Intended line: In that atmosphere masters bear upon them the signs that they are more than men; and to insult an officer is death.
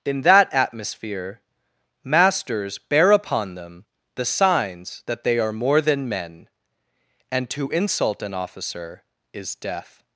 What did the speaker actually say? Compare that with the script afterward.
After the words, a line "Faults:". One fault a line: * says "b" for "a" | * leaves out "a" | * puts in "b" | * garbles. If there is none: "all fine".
In that atmosphere masters bear upon them the signs that they are more than men; and to insult an officer is death.
Faults:
all fine